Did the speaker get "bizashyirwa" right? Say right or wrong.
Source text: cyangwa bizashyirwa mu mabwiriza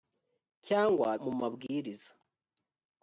wrong